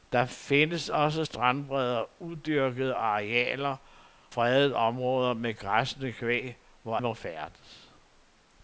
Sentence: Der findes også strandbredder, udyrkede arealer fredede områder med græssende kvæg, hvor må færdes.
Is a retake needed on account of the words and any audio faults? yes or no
no